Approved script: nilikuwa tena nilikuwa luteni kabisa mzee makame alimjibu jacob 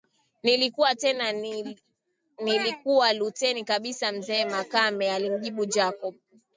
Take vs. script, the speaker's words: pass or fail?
pass